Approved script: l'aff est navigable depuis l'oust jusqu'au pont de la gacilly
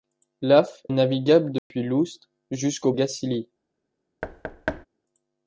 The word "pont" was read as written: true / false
false